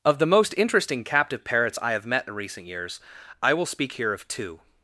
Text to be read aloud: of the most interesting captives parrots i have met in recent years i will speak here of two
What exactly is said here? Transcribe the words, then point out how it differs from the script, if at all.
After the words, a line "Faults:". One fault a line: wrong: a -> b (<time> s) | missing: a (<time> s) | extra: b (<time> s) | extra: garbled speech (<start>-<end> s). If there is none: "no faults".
of the most interesting captive parrots i have met in recent years i will speak here of two
Faults:
wrong: captives -> captive (1.0 s)